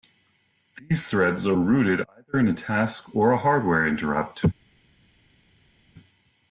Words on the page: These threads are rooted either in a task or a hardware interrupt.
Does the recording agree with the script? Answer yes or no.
yes